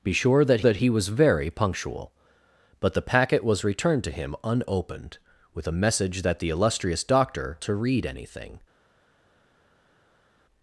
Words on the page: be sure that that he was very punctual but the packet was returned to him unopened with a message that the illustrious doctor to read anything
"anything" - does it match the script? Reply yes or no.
yes